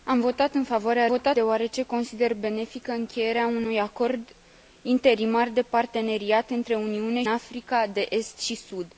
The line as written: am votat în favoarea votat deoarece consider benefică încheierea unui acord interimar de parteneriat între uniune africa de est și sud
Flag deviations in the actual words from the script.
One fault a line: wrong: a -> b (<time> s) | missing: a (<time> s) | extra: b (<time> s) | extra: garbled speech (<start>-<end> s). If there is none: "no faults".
no faults